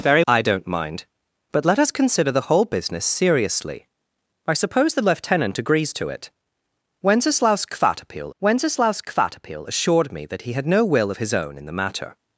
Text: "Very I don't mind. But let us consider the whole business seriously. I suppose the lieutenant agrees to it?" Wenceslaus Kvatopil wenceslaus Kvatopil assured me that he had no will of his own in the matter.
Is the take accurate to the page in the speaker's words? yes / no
yes